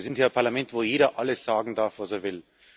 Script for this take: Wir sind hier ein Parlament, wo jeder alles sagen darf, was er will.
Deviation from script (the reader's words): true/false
false